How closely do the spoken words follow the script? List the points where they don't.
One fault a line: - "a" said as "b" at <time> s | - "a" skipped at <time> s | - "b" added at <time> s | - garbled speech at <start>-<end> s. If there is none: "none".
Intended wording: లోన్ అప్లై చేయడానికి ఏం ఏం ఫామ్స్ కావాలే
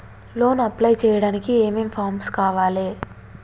none